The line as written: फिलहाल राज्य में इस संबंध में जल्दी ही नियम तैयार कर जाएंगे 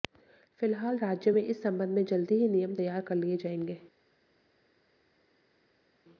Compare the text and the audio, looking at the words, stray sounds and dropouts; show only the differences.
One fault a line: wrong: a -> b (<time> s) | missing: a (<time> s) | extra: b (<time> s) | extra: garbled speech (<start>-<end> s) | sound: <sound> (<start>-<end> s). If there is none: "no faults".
extra: लिए (3.1 s)